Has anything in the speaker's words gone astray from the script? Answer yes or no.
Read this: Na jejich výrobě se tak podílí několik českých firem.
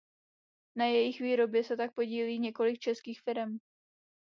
no